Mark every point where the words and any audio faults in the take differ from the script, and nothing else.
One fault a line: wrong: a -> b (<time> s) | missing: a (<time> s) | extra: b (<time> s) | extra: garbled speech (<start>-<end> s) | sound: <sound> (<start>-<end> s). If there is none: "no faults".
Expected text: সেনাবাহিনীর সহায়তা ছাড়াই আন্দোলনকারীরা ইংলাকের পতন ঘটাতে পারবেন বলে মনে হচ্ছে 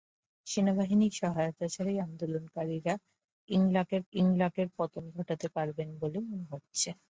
extra: ইংলাকের (4.1 s)